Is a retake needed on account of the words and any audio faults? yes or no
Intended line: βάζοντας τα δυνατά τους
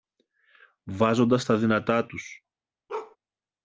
yes